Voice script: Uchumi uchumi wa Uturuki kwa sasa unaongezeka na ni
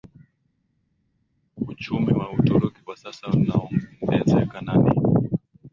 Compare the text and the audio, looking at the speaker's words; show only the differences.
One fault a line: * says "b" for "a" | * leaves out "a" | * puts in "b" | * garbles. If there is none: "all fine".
* leaves out "uchumi"